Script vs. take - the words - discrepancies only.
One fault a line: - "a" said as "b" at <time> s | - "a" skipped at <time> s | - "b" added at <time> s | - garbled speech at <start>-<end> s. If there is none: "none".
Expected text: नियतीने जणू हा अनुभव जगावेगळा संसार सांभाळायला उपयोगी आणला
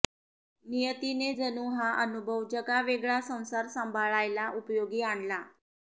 none